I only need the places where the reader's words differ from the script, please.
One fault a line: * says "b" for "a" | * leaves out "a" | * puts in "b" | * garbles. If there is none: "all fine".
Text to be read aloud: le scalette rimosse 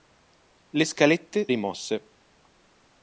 all fine